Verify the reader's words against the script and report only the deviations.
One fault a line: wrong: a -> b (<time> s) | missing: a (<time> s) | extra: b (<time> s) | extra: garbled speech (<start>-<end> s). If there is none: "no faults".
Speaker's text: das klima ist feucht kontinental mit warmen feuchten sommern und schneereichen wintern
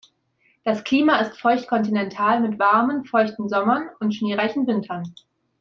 no faults